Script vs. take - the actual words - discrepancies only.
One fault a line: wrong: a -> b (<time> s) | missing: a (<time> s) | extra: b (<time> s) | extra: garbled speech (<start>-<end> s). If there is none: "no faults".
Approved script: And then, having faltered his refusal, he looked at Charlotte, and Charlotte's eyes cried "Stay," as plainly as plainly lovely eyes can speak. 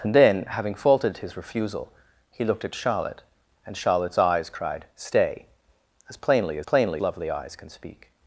no faults